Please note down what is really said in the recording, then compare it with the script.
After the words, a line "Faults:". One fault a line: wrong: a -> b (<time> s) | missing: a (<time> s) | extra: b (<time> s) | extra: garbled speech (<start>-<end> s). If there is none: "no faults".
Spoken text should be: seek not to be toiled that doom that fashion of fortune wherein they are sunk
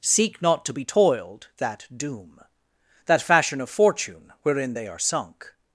seek not to be toiled that doom that fashion of fortune wherein they are sunk
Faults:
no faults